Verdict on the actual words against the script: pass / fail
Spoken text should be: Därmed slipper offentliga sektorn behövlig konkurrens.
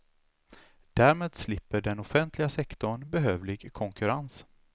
fail